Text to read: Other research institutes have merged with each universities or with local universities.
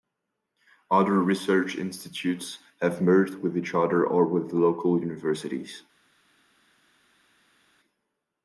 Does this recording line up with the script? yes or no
no